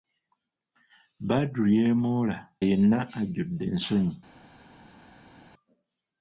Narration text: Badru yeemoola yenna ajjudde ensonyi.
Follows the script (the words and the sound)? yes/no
yes